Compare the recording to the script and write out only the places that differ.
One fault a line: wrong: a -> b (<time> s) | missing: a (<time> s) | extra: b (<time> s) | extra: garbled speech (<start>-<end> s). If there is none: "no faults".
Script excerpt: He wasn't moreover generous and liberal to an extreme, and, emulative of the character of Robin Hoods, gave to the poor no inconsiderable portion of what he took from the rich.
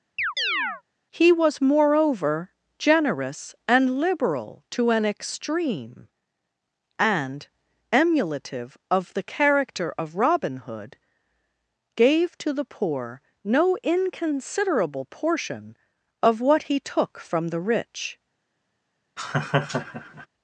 wrong: wasn't -> was (1.3 s)
wrong: Hoods -> Hood (10.6 s)